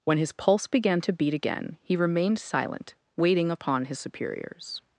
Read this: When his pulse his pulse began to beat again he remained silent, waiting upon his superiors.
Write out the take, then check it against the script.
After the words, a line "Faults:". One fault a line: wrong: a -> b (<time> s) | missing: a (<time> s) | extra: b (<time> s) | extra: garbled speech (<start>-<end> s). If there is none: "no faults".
When his pulse began to beat again he remained silent, waiting upon his superiors.
Faults:
missing: his pulse (0.7 s)